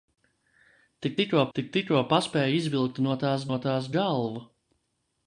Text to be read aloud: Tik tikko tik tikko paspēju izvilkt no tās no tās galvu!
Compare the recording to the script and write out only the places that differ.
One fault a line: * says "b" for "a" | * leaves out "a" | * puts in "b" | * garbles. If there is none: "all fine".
all fine